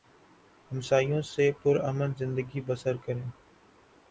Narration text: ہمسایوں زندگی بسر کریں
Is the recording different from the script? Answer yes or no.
yes